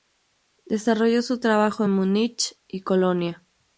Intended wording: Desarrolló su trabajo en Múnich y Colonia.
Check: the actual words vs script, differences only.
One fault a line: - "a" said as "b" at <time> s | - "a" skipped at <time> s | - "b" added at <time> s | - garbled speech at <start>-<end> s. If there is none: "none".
none